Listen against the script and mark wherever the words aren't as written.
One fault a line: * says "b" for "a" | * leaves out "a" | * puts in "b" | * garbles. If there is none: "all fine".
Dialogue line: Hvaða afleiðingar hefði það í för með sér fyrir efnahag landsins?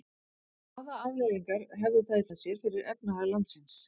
* leaves out "för"